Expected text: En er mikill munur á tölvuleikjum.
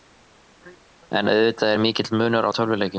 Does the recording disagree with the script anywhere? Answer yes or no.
yes